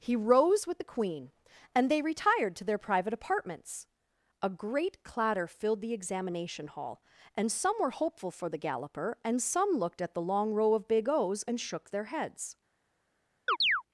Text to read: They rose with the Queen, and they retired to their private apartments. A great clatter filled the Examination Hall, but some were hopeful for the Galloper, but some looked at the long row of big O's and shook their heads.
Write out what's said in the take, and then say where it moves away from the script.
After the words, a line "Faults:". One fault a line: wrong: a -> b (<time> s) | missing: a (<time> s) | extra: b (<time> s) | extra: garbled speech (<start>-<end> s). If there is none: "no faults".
He rose with the Queen, and they retired to their private apartments. A great clatter filled the Examination Hall, and some were hopeful for the Galloper, and some looked at the long row of big O's and shook their heads.
Faults:
wrong: They -> He (0.0 s)
wrong: but -> and (7.4 s)
wrong: but -> and (9.3 s)